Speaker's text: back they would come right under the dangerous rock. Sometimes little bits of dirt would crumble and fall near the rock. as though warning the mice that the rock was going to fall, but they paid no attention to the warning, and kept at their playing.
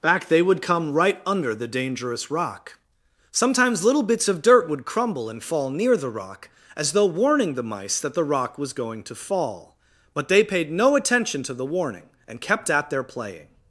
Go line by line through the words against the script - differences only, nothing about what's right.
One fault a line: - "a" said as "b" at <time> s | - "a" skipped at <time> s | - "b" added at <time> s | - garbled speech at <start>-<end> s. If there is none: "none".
none